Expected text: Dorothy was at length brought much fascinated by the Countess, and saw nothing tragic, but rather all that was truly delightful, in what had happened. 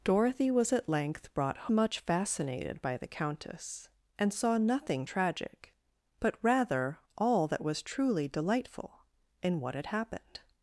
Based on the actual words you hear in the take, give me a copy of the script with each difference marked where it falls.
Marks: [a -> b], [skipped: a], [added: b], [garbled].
Dorothy was at length brought much fascinated by the Countess, and saw nothing tragic, but rather all that was truly delightful, in what had happened.